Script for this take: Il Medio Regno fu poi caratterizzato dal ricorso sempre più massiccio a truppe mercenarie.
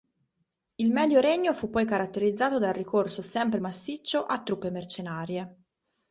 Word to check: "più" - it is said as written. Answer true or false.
false